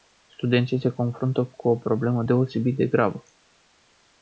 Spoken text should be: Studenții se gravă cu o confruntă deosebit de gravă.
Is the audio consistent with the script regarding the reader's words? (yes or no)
no